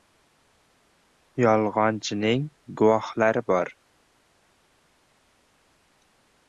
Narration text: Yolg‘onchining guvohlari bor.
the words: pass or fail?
pass